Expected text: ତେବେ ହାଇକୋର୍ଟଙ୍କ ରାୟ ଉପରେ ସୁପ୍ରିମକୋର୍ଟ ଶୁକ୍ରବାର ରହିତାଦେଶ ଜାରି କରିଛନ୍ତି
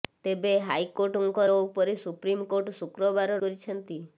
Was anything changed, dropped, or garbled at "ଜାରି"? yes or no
yes